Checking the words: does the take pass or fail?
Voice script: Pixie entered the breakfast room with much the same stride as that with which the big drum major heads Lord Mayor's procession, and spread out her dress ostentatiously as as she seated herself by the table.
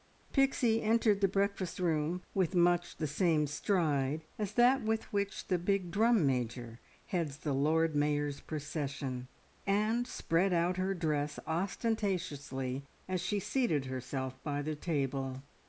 fail